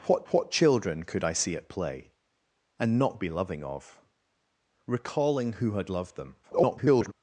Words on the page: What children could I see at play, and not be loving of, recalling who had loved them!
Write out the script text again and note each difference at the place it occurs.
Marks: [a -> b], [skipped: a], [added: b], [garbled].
What [added: what] children could I see at play, and not be loving of, recalling who had loved them! [garbled]